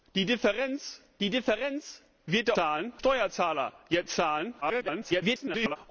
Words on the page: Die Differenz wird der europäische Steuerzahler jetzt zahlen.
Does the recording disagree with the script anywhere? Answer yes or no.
yes